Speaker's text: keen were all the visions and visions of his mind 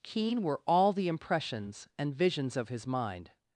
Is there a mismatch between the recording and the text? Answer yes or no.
yes